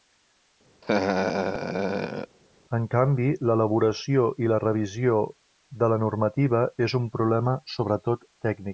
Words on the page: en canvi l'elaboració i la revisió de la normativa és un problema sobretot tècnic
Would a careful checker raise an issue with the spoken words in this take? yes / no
no